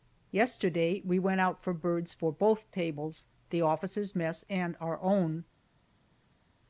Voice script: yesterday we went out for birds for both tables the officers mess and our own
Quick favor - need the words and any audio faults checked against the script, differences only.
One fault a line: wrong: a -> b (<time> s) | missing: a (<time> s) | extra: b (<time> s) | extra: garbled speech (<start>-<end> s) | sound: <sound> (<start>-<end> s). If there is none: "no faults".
no faults